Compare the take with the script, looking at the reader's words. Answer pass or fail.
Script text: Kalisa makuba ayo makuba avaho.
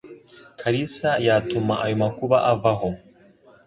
fail